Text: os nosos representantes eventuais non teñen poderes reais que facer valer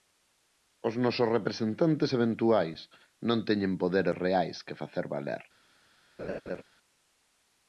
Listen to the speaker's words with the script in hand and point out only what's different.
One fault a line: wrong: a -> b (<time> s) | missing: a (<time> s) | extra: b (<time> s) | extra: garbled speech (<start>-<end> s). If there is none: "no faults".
no faults